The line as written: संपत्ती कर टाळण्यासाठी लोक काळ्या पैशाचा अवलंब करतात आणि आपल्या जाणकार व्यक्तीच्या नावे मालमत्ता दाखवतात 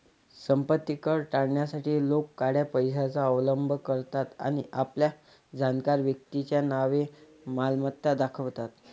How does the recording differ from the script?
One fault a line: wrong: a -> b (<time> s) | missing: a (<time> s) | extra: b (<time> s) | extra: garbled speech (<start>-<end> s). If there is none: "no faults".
no faults